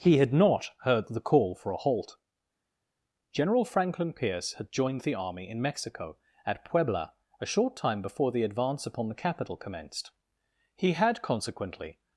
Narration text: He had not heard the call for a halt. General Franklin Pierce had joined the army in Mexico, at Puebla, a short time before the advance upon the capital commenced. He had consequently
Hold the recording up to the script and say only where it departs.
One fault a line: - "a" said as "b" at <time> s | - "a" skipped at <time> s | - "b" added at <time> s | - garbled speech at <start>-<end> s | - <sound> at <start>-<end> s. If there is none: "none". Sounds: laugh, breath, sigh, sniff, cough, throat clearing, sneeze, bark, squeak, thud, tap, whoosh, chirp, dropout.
none